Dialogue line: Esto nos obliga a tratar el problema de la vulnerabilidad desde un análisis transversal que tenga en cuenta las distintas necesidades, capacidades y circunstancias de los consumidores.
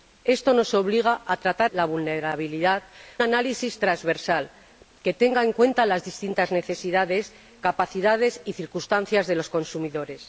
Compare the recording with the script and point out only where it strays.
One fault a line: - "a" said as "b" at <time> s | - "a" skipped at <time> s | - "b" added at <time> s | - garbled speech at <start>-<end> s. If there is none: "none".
- "el problema de" skipped at 1.7 s
- "desde un" skipped at 2.8 s